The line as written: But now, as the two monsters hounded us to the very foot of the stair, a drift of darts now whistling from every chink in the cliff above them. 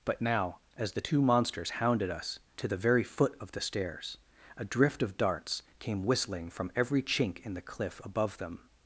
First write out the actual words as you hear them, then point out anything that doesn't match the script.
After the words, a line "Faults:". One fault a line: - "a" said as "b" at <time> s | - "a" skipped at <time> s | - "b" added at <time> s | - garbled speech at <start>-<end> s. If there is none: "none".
But now, as the two monsters hounded us to the very foot of the stairs, a drift of darts came whistling from every chink in the cliff above them.
Faults:
- "stair" said as "stairs" at 3.6 s
- "now" said as "came" at 5.8 s